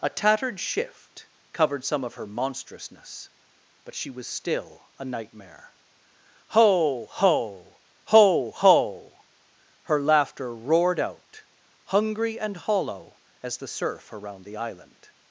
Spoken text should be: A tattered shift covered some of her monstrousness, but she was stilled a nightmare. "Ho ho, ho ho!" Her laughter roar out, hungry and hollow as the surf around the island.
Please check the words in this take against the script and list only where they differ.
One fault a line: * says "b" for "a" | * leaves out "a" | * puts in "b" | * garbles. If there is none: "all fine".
* says "still" for "stilled"
* says "roared" for "roar"